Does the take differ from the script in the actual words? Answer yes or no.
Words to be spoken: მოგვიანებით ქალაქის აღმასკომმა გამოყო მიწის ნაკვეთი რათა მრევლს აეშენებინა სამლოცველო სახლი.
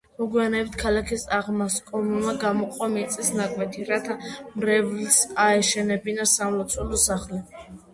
no